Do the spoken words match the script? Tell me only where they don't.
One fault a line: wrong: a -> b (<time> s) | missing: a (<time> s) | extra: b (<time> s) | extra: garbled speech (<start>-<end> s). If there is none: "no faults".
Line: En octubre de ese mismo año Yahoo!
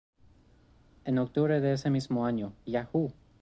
no faults